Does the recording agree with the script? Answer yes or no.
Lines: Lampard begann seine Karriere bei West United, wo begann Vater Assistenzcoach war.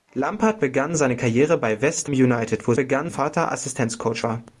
yes